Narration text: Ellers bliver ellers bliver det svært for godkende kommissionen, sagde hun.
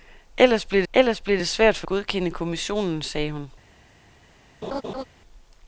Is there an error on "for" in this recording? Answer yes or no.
no